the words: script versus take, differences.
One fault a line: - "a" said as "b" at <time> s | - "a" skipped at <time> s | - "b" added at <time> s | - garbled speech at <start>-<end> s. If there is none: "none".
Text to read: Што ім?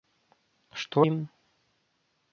none